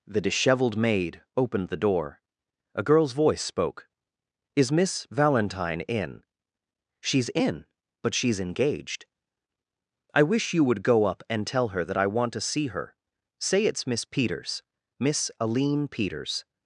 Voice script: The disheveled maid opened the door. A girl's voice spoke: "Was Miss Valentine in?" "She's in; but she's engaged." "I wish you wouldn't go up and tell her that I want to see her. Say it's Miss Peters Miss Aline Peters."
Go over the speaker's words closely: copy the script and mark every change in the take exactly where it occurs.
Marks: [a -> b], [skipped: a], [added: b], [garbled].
The disheveled maid opened the door. A girl's voice spoke: ["Was -> Is] Miss Valentine in?" "She's in; but she's engaged." "I wish you [wouldn't -> would] go up and tell her that I want to see her. Say it's Miss Peters Miss Aline Peters."